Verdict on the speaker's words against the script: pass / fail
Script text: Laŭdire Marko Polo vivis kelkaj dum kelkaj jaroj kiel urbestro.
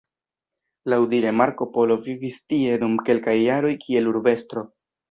fail